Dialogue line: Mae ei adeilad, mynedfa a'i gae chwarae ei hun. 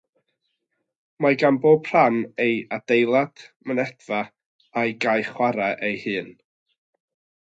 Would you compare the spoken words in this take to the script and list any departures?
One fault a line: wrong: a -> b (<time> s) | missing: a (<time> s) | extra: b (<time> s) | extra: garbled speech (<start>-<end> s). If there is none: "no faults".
extra: gan bob rhan (1.4 s)